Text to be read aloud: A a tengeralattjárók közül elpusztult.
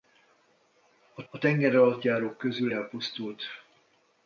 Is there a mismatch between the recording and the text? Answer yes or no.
no